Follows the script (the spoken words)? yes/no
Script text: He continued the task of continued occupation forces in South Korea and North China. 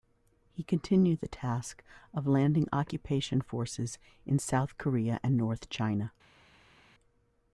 no